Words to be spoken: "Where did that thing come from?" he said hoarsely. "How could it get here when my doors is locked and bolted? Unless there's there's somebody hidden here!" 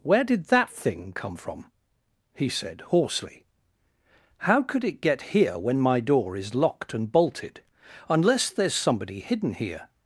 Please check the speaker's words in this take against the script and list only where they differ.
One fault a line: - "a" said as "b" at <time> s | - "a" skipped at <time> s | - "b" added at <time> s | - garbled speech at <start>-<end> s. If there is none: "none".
- "doors" said as "door" at 6.0 s
- "there's" skipped at 8.7 s